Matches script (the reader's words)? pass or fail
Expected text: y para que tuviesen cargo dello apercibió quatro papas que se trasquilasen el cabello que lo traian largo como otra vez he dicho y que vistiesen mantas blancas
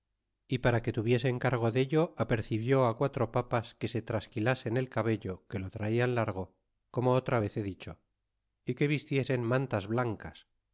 pass